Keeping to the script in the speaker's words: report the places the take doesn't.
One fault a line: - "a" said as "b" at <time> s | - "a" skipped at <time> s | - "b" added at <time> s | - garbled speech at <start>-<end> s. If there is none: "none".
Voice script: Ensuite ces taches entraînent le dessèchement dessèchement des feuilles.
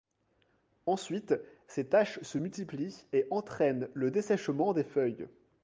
- "se multiplient et" added at 2.2 s
- "dessèchement" skipped at 4.7 s